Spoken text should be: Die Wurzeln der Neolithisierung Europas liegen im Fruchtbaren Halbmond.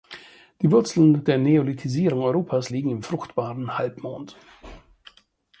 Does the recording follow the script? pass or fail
pass